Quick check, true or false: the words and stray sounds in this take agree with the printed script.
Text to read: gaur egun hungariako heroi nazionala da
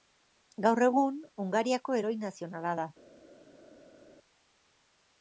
true